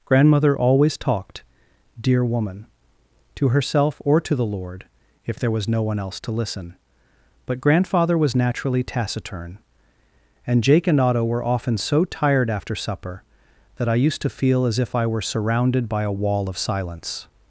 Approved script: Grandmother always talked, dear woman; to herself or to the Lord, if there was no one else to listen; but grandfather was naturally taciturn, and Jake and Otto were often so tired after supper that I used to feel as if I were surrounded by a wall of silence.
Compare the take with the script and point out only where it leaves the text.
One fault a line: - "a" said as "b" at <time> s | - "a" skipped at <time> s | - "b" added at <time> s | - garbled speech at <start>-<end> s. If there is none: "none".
none